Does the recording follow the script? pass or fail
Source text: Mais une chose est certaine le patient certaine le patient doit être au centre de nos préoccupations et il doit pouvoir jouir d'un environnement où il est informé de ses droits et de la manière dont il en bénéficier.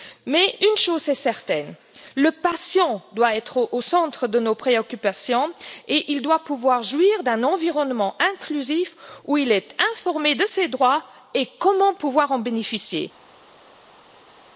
fail